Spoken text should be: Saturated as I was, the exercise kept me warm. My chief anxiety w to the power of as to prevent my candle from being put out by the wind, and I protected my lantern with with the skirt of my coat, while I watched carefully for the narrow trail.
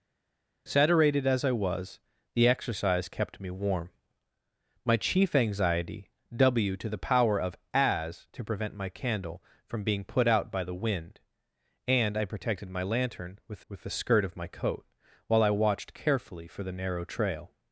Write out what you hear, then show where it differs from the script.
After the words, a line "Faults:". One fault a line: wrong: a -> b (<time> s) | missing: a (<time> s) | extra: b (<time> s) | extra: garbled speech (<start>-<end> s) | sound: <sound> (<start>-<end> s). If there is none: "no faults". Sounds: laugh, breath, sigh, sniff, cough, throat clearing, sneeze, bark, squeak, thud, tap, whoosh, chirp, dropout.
Saturated as I was, the exercise kept me warm. My chief anxiety w to the power of as to prevent my candle from being put out by the wind, and I protected my lantern with with the skirt of my coat, while I watched carefully for the narrow trail.
Faults:
no faults